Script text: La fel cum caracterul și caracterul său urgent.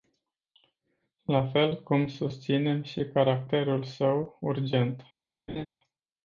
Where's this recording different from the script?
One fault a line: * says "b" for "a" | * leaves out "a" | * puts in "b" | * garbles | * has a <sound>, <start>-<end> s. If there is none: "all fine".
* says "susținem" for "caracterul"
* has a laugh, 5.5-5.7 s